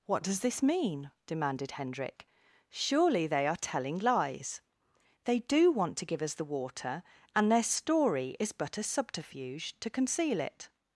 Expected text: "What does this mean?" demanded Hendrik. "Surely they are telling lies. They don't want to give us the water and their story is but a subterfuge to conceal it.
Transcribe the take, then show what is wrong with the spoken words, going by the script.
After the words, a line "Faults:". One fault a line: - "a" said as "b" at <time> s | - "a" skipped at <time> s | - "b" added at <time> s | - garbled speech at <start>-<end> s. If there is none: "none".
"What does this mean?" demanded Hendrik. "Surely they are telling lies. They do want to give us the water and their story is but a subterfuge to conceal it.
Faults:
- "don't" said as "do" at 5.4 s